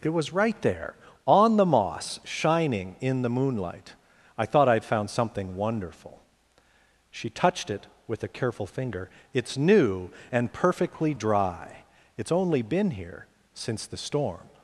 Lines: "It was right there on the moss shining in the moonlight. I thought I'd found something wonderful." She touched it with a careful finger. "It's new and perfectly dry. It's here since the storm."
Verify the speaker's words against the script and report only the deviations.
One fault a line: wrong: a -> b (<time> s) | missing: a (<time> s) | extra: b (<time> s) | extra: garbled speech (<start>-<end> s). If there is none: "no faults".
extra: only been (12.3 s)